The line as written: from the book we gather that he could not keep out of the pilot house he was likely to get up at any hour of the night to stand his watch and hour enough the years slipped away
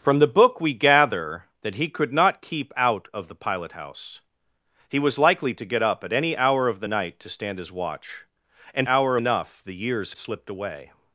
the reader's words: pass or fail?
pass